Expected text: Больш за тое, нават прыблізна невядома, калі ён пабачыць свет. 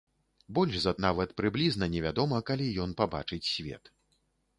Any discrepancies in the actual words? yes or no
yes